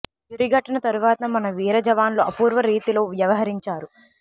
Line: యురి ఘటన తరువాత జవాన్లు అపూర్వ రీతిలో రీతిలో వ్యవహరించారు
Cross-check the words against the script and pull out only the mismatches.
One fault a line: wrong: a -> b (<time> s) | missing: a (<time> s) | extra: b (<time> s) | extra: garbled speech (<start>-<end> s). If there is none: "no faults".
extra: మన వీర (1.3 s)
missing: రీతిలో (3.0 s)